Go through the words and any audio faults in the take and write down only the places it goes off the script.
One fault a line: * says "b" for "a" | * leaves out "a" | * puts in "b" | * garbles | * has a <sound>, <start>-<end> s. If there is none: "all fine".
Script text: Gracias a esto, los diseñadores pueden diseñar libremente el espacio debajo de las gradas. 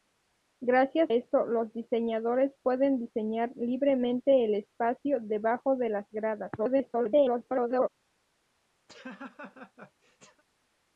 * leaves out "a"
* garbles
* has a laugh, 8.9-10.4 s